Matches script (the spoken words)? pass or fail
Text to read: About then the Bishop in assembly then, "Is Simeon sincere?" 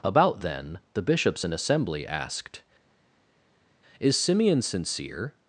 fail